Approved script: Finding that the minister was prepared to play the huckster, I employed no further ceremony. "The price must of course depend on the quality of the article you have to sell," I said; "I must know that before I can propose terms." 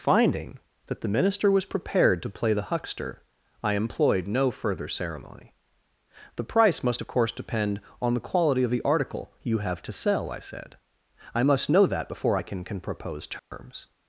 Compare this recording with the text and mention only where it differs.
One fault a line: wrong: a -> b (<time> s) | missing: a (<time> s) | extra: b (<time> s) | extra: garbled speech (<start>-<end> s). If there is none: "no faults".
extra: can (12.6 s)